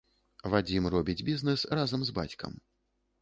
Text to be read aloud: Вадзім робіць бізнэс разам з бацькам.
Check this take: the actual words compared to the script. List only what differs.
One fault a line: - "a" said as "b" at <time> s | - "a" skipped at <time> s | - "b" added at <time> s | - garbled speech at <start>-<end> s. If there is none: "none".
none